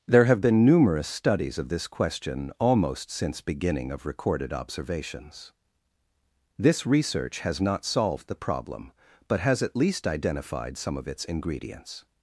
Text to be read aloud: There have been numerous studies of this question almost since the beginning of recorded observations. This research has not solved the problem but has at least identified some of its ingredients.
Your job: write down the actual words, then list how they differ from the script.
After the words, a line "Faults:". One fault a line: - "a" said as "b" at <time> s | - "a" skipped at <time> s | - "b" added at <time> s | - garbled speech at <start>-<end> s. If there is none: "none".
There have been numerous studies of this question almost since beginning of recorded observations. This research has not solved the problem but has at least identified some of its ingredients.
Faults:
- "the" skipped at 3.4 s